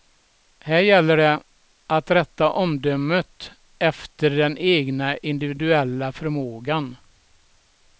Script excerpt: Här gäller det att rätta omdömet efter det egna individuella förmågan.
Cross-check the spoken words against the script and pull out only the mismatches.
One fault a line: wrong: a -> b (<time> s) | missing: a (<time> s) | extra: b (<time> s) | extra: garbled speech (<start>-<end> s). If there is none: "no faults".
wrong: det -> den (4.3 s)